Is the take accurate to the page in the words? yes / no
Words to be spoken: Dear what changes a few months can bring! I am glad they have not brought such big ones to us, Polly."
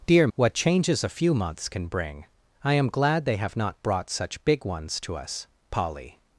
yes